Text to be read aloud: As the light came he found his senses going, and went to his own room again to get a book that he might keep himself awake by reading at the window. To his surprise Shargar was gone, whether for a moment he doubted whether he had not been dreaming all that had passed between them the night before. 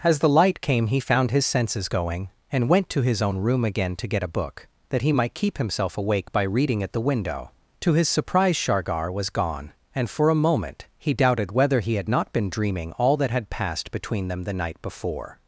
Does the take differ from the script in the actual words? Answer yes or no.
yes